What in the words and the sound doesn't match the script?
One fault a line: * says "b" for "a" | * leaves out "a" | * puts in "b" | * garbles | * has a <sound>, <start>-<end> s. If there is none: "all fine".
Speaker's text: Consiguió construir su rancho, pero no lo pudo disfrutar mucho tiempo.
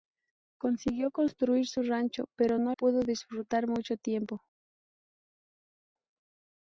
* leaves out "lo"